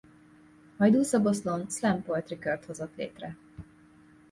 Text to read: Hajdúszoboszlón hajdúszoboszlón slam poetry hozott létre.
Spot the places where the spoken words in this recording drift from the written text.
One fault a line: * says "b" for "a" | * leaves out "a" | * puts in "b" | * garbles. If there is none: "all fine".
* leaves out "hajdúszoboszlón"
* puts in "kört"